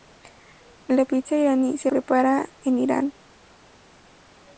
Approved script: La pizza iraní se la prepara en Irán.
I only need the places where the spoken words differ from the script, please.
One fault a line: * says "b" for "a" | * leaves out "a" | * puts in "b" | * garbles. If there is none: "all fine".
* leaves out "la"